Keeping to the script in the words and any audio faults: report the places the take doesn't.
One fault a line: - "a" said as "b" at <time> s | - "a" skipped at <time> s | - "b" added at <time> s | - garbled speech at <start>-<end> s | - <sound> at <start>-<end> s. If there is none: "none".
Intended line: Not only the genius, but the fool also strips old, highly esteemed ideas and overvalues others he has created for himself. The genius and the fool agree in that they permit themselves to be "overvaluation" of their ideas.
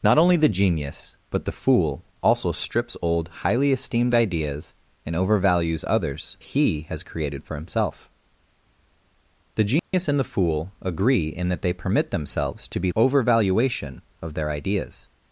- dropout at 9.8-9.9 s